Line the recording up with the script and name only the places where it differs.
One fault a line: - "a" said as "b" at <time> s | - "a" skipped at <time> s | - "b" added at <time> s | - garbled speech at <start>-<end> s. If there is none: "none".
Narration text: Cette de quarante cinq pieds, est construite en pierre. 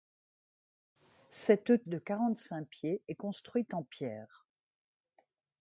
none